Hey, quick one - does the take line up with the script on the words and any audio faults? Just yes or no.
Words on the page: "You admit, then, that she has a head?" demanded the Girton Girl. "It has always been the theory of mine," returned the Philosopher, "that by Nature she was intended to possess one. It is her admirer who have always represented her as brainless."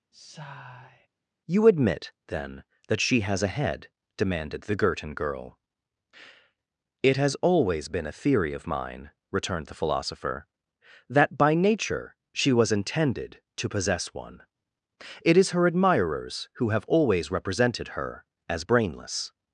no